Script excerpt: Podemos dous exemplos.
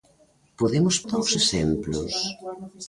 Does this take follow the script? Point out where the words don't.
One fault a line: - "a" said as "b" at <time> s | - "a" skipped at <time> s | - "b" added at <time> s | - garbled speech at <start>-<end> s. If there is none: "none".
none